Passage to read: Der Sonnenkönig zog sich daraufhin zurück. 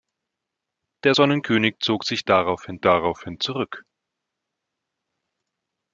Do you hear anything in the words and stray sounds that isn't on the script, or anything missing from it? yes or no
yes